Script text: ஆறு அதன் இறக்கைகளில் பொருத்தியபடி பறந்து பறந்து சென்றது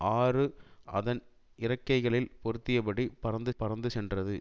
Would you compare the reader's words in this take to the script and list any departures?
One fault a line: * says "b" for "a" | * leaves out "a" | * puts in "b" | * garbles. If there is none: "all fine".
all fine